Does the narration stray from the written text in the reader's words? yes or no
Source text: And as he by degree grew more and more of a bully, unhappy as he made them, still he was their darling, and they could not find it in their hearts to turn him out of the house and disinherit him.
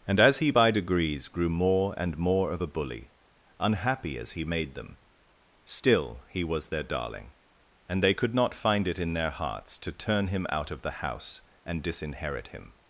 yes